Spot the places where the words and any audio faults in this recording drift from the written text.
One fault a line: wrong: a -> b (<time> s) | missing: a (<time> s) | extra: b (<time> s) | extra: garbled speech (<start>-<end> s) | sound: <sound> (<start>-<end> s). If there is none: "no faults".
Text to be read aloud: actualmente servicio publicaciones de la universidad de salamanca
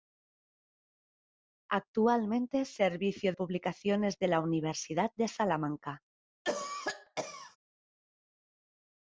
sound: cough (6.4-7.6 s)